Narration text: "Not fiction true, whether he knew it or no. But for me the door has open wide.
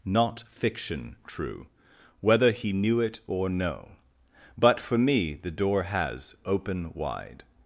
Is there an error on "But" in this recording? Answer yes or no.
no